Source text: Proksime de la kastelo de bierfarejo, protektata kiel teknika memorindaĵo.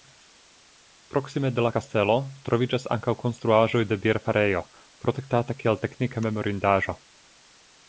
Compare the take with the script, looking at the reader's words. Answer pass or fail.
fail